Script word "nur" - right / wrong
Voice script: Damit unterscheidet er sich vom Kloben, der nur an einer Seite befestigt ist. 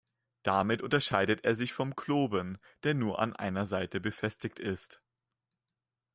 right